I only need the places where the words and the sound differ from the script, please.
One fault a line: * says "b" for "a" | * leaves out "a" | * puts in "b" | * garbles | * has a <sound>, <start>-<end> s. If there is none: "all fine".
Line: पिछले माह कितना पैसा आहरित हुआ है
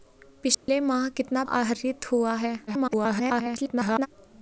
* has a dropout, 0.5-0.7 s
* leaves out "पैसा"
* garbles